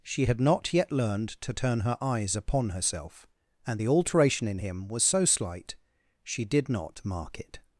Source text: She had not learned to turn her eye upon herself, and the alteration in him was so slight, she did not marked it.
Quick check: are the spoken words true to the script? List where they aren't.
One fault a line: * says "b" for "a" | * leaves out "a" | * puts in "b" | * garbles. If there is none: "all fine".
* puts in "yet"
* says "eyes" for "eye"
* says "mark" for "marked"